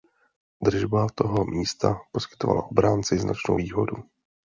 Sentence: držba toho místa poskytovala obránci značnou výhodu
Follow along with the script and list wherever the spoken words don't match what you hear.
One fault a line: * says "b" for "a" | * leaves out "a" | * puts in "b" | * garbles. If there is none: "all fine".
all fine